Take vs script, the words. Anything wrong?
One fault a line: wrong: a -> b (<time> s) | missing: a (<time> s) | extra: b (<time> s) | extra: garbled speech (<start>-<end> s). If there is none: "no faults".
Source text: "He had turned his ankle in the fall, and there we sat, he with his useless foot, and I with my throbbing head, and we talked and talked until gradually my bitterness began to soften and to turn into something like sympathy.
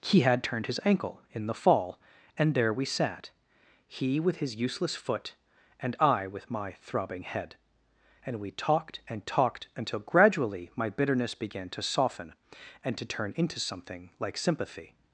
no faults